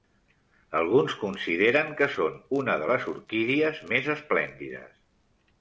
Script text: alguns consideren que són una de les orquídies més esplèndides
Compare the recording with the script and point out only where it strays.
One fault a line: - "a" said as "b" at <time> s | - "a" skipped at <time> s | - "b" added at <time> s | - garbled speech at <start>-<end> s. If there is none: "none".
none